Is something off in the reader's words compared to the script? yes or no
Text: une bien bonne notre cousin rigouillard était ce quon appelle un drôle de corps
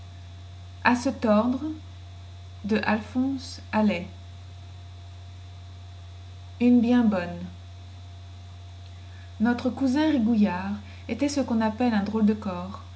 no